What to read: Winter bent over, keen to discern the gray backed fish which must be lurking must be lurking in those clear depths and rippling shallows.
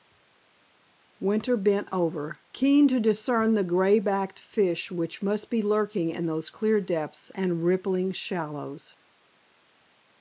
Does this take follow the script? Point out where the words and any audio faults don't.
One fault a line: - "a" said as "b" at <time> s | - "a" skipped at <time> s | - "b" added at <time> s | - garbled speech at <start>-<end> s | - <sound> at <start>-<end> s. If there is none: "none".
- "must be lurking" skipped at 6.1 s